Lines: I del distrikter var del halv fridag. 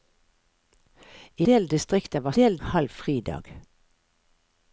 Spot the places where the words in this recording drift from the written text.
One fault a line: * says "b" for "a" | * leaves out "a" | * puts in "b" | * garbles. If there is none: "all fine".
all fine